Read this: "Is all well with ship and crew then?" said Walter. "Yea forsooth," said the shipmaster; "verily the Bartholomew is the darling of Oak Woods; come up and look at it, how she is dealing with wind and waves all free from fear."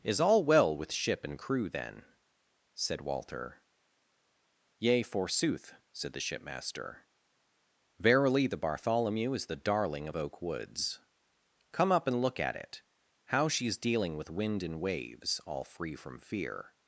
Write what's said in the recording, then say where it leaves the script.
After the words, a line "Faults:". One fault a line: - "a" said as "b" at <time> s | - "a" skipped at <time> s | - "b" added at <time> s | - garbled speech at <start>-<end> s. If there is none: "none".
"Is all well with ship and crew then?" said Walter. "Yea forsooth," said the shipmaster; "verily the Bartholomew is the darling of Oak Woods; come up and look at it, how she is dealing with wind and waves all free from fear."
Faults:
none